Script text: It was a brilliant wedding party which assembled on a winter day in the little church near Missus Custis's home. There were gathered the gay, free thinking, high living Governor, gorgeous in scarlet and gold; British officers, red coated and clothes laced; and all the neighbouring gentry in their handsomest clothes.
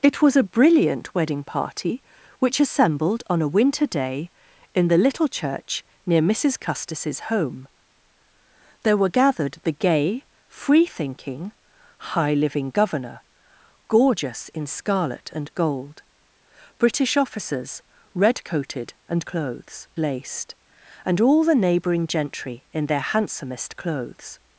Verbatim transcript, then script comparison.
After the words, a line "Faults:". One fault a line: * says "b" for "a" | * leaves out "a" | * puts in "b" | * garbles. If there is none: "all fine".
It was a brilliant wedding party which assembled on a winter day in the little church near Missus Custis's home. There were gathered the gay, free thinking, high living Governor, gorgeous in scarlet and gold; British officers, red coated and clothes laced; and all the neighbouring gentry in their handsomest clothes.
Faults:
all fine